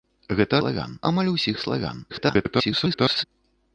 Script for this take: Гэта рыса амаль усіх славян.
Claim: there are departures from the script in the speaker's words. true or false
true